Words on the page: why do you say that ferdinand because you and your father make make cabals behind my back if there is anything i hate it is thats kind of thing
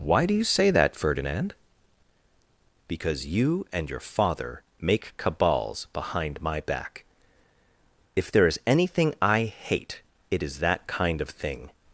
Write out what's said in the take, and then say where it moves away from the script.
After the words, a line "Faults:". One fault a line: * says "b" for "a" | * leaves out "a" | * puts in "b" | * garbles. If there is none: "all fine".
why do you say that ferdinand because you and your father make cabals behind my back if there is anything i hate it is that kind of thing
Faults:
* leaves out "make"
* says "that" for "thats"